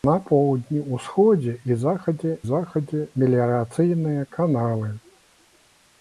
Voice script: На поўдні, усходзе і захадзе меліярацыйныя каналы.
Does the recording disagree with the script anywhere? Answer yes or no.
yes